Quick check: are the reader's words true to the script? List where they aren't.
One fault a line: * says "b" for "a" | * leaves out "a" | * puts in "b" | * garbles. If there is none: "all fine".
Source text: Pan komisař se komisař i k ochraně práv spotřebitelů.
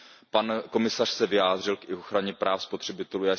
* says "vyjádřil" for "komisař"